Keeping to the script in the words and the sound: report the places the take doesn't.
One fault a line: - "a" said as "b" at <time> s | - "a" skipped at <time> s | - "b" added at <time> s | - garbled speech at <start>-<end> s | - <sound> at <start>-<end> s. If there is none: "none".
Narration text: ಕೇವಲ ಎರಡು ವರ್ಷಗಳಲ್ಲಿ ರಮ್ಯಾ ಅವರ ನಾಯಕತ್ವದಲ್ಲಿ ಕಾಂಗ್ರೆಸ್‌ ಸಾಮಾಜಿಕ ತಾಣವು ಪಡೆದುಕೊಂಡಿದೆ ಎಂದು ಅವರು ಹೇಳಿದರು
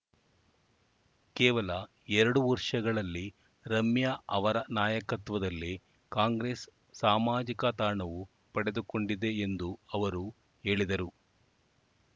none